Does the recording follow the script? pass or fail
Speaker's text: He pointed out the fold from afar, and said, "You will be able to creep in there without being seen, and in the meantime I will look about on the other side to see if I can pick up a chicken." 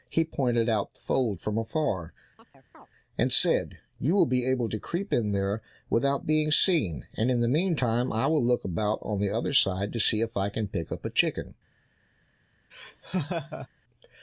pass